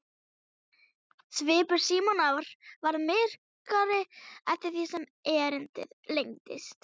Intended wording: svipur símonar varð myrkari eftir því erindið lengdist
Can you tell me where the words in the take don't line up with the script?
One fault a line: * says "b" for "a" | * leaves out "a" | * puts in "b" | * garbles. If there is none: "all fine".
* puts in "sem"